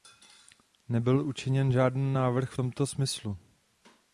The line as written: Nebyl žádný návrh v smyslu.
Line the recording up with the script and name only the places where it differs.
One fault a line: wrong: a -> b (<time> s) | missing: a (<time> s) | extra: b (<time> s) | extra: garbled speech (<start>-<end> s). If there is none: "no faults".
extra: učiněn (1.3 s)
extra: tomto (2.5 s)